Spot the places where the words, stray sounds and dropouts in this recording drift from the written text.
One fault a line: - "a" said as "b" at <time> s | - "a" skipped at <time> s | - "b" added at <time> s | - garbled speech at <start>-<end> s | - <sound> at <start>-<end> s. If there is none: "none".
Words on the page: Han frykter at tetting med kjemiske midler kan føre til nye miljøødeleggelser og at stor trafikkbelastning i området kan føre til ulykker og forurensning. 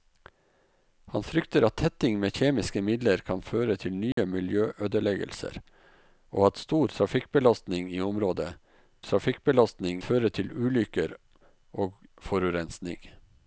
- dropout at 4.1-4.2 s
- "kan" said as "trafikkbelastning" at 9.0 s